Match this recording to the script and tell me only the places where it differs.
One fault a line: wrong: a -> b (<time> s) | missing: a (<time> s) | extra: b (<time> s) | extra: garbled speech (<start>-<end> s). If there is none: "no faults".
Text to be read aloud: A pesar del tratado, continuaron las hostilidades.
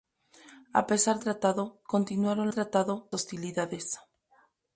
missing: del (1.2 s)
wrong: las -> tratado (2.5 s)